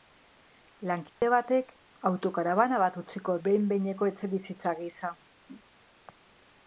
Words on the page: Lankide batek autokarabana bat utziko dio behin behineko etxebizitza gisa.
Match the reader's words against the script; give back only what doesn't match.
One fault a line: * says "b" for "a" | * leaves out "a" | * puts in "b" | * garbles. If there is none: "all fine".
* leaves out "dio"